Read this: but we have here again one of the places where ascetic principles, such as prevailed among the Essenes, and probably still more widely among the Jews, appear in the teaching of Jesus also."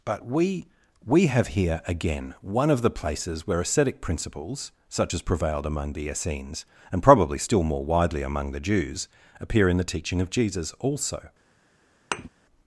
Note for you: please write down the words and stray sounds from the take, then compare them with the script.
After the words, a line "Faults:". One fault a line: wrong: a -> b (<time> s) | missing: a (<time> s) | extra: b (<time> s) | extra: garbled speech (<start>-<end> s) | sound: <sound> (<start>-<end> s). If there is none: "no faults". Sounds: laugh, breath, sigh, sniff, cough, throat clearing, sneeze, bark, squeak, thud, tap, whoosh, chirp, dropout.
but we we have here again one of the places where ascetic principles, such as prevailed among the Essenes, and probably still more widely among the Jews, appear in the teaching of Jesus also."
Faults:
extra: we (1.1 s)
sound: thud (12.1-12.3 s)